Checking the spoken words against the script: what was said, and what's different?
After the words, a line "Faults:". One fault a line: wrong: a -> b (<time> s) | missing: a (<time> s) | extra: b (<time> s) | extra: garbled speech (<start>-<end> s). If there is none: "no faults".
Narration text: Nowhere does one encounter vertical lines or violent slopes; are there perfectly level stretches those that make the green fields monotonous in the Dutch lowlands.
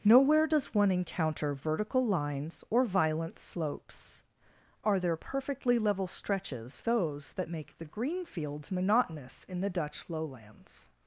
Nowhere does one encounter vertical lines or violent slopes; are there perfectly level stretches those that make the green fields monotonous in the Dutch lowlands.
Faults:
no faults